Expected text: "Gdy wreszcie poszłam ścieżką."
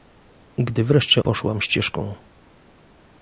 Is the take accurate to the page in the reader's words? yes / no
yes